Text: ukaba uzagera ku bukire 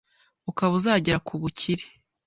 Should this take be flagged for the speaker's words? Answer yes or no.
no